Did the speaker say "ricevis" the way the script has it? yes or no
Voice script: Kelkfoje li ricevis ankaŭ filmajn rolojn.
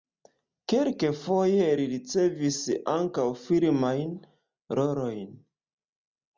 yes